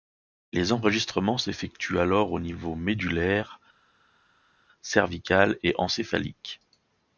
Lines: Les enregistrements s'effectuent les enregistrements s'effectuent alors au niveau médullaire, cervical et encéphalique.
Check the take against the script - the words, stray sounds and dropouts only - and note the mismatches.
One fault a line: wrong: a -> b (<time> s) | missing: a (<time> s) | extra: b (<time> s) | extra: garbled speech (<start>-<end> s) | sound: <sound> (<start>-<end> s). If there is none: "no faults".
missing: les enregistrements s'effectuent (2.0 s)